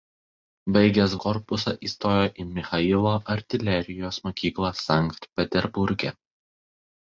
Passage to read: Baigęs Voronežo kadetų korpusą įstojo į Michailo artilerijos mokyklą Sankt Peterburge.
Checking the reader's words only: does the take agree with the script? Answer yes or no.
no